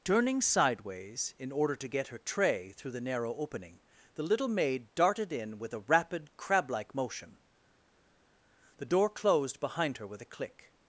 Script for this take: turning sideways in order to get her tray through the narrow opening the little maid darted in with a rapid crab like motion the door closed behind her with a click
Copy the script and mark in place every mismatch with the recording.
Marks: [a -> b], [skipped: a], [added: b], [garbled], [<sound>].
turning sideways in order to get her tray through the narrow opening the little maid darted in with a rapid crab like motion the door closed behind her with a click